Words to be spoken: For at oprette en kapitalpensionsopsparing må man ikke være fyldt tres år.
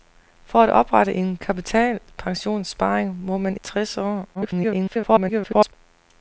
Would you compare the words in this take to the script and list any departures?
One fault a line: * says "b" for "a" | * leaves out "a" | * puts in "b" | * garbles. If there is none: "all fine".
* leaves out "ikke være fyldt"
* garbles